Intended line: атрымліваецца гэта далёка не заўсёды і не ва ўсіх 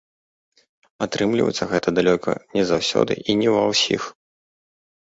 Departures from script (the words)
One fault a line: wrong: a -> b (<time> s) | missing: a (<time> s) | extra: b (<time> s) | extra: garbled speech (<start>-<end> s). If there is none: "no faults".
no faults